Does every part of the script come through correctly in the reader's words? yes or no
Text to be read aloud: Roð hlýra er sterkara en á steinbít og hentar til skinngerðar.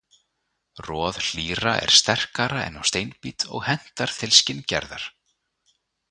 yes